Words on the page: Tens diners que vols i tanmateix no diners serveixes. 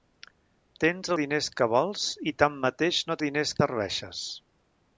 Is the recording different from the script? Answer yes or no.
no